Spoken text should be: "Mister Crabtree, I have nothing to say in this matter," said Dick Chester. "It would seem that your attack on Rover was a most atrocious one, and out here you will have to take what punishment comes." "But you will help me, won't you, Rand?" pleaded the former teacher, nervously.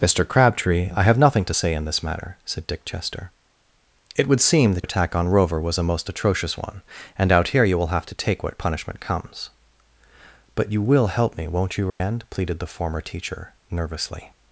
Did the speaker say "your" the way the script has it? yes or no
no